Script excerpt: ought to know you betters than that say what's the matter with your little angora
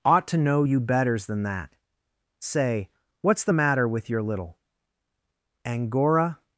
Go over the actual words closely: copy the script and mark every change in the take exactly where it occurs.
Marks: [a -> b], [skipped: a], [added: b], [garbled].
ought to know you betters than that say what's the matter with your little angora